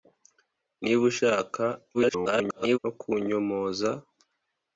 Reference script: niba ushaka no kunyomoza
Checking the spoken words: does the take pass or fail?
fail